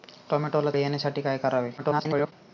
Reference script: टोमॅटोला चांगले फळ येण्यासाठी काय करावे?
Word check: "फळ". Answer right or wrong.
wrong